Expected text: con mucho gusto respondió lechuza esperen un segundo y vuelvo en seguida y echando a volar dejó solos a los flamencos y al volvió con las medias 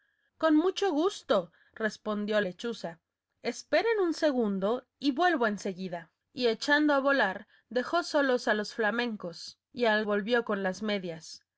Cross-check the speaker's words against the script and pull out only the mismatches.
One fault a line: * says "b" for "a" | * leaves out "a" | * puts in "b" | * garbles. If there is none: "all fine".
all fine